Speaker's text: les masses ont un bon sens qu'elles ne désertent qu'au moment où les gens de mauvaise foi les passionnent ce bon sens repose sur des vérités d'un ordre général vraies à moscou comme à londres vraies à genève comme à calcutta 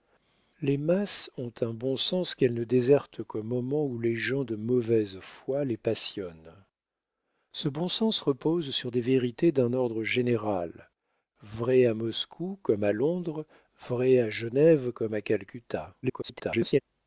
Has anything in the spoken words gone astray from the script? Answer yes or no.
yes